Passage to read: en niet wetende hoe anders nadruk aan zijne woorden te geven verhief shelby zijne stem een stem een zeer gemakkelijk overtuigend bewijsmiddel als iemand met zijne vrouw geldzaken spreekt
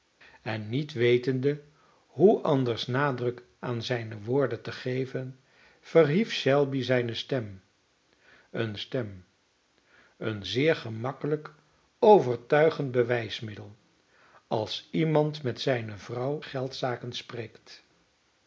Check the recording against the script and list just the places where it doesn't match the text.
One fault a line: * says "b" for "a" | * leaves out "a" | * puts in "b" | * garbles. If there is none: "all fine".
all fine